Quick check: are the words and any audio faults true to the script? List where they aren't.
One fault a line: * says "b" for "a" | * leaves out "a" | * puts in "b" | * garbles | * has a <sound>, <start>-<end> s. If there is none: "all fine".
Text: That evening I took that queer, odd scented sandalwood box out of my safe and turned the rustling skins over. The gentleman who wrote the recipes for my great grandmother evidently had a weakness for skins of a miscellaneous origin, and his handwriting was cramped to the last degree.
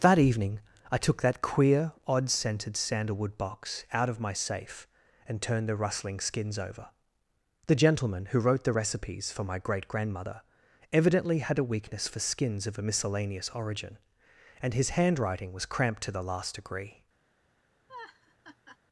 * has a laugh, 17.9-18.8 s